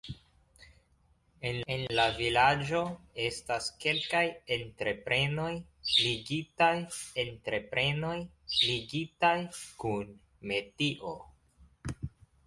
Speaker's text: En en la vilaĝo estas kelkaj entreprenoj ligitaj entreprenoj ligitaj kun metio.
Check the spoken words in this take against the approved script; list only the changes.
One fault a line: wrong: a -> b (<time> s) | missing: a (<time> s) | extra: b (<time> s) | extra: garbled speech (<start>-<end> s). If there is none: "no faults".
no faults